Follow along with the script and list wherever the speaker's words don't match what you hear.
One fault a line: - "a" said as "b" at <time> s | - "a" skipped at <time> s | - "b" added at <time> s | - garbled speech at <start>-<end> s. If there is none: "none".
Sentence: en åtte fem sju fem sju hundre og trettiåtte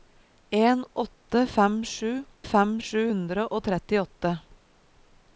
none